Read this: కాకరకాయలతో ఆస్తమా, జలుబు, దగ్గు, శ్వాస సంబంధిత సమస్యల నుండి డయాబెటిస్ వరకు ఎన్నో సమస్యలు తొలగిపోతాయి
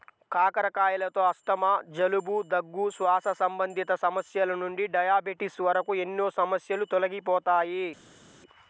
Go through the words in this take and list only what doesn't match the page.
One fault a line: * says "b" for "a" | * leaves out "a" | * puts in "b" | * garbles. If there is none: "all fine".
all fine